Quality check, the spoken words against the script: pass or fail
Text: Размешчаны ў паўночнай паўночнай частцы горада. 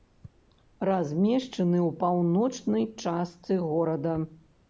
fail